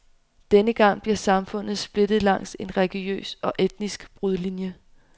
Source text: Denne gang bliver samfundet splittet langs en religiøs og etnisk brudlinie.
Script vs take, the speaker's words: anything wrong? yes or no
no